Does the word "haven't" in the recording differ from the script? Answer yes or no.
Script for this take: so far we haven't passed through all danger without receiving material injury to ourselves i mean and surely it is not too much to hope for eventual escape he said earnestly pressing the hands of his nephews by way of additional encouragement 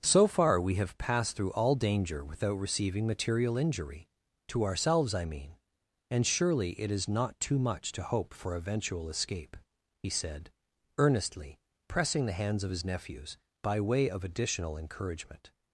yes